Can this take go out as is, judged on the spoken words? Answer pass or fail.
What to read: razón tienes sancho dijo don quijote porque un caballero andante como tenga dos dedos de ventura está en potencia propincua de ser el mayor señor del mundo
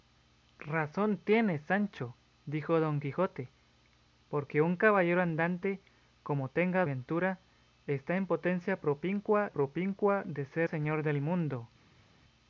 fail